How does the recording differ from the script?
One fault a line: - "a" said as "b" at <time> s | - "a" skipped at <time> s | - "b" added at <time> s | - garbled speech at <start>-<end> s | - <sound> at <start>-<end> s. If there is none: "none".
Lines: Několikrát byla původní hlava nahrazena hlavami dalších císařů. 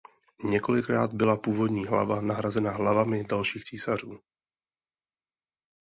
none